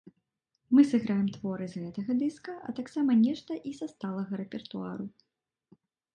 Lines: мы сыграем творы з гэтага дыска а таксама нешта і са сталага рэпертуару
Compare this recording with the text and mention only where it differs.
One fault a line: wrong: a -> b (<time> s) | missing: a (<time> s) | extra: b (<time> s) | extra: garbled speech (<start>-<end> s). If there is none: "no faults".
no faults